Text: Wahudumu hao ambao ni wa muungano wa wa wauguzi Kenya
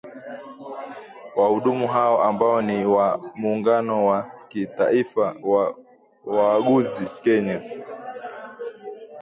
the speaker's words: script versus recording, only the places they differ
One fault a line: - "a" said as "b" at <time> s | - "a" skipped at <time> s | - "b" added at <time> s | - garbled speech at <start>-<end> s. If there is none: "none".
- "kitaifa" added at 4.5 s